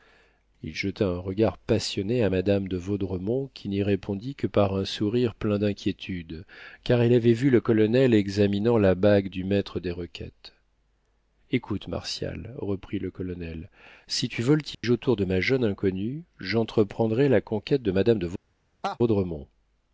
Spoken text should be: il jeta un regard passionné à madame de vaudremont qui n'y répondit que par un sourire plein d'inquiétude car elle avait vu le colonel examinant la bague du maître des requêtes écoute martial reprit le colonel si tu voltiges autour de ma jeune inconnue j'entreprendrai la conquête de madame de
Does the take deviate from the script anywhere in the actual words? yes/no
no